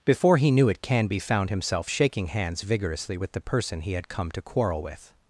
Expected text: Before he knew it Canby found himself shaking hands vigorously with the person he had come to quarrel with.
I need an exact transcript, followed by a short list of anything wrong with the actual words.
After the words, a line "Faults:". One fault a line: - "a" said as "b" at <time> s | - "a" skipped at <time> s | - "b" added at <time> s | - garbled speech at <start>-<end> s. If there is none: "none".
Before he knew it Canby found himself shaking hands vigorously with the person he had come to quarrel with.
Faults:
none